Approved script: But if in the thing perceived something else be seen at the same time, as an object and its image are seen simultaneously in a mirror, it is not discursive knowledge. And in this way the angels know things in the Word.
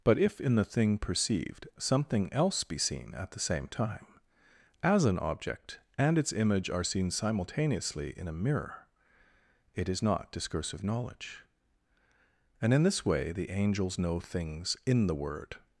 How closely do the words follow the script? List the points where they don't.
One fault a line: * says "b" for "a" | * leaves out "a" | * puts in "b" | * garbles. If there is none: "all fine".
all fine